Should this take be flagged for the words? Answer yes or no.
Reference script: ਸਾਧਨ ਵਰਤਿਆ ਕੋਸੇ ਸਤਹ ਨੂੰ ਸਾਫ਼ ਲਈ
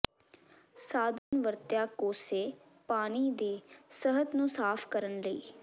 yes